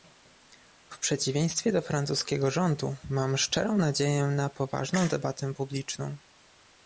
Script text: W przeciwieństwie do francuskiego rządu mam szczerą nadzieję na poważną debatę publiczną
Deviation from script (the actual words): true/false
false